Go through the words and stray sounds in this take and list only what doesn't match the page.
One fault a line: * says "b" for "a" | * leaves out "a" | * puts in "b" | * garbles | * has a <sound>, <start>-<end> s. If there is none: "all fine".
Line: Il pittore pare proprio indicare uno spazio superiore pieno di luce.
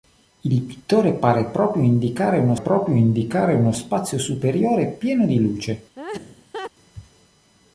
* puts in "proprio indicare uno"
* has a laugh, 6.0-6.7 s